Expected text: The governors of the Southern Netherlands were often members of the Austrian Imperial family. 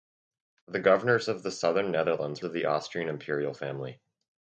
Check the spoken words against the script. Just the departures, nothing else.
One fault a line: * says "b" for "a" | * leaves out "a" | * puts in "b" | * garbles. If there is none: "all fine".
* leaves out "were often members"